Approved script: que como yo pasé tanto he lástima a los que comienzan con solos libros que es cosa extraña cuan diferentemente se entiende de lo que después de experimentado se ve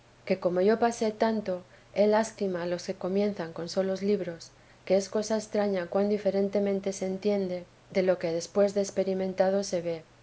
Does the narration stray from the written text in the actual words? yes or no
no